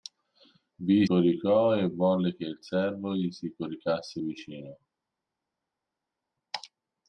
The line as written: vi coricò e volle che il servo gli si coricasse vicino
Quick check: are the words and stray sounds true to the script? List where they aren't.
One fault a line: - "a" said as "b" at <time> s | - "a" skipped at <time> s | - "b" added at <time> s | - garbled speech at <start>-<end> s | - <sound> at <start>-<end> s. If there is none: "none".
none